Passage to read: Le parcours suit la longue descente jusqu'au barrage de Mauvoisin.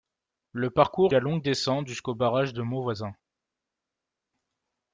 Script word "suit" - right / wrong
wrong